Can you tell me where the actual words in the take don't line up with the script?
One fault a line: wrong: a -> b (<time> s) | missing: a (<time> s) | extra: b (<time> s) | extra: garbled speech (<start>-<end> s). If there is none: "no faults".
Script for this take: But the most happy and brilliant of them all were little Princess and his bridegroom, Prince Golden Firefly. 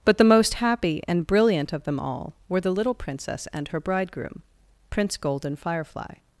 extra: the (2.6 s)
wrong: his -> her (3.7 s)